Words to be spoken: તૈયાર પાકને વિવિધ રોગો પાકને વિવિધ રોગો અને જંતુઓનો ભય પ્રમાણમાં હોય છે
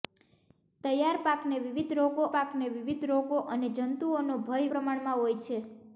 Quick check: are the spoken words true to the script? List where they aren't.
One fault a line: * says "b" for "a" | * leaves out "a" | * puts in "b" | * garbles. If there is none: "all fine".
all fine